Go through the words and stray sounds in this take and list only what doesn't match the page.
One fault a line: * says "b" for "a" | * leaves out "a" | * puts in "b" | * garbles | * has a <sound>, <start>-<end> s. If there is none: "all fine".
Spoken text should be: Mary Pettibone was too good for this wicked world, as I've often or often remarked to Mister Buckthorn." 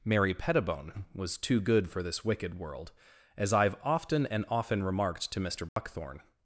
* says "and" for "or"
* has a dropout, 5.7-5.8 s